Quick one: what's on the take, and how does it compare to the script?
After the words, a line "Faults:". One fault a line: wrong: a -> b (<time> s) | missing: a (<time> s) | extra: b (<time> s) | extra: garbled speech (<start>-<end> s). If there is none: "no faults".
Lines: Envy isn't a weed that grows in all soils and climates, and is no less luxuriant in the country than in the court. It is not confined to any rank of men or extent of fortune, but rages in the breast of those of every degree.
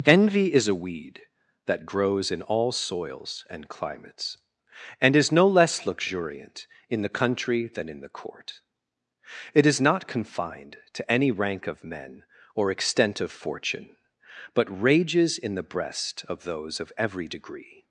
Envy is a weed that grows in all soils and climates, and is no less luxuriant in the country than in the court. It is not confined to any rank of men or extent of fortune, but rages in the breast of those of every degree.
Faults:
wrong: isn't -> is (0.5 s)